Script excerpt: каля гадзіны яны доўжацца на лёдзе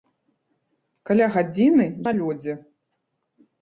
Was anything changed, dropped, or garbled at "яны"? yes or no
yes